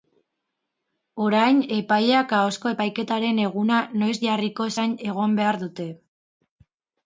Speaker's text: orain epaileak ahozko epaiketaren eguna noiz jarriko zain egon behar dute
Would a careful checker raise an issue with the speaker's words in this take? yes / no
no